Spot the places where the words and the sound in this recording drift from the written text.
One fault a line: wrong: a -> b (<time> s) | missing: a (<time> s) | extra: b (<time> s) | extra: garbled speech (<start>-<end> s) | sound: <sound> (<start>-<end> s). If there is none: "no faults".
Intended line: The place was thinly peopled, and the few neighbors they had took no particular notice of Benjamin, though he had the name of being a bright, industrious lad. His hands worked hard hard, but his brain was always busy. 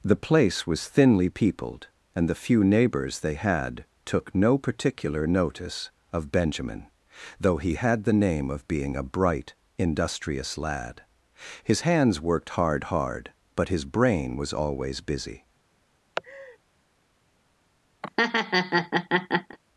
sound: laugh (16.2-16.6 s)
sound: laugh (18.0-19.6 s)